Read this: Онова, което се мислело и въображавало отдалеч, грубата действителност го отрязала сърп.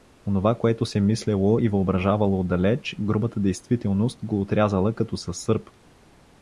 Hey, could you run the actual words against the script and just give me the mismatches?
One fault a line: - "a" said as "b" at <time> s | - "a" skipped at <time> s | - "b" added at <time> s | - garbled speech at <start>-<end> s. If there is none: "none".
- "като със" added at 4.9 s